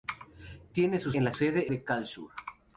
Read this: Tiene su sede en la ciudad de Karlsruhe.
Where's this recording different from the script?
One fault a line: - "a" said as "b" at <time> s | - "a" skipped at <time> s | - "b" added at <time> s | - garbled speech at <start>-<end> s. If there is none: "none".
- "sede" skipped at 1.1 s
- "ciudad" said as "sede" at 1.3 s